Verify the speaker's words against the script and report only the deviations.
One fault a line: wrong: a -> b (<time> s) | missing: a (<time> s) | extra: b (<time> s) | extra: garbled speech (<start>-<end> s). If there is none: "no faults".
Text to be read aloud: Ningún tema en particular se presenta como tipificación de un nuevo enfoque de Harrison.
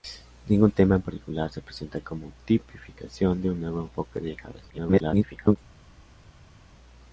extra: garbled speech (4.7-5.6 s)